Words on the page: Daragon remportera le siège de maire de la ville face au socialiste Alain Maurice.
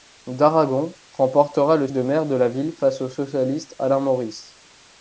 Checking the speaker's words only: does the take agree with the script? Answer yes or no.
no